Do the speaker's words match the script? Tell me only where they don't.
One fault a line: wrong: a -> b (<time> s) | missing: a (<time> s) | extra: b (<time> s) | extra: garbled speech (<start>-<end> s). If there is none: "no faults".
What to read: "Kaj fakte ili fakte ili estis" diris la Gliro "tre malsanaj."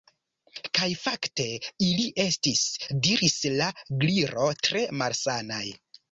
missing: fakte ili (2.1 s)